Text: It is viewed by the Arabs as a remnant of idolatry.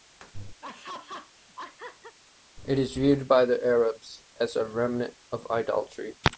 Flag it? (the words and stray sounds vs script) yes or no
yes